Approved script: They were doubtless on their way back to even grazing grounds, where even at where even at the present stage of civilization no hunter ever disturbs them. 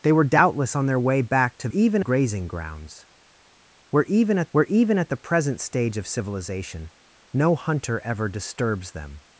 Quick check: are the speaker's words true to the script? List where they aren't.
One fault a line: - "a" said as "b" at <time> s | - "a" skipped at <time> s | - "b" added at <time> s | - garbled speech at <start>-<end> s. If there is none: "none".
none